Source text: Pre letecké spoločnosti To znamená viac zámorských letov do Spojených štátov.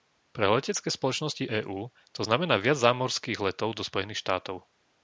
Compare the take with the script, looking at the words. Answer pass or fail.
fail